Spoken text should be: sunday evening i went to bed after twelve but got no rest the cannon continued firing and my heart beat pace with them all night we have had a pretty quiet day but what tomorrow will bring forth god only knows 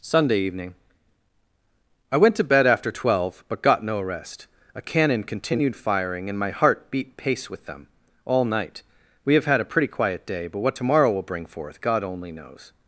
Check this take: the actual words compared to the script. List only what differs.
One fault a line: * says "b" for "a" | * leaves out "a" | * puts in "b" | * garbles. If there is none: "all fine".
* says "a" for "the"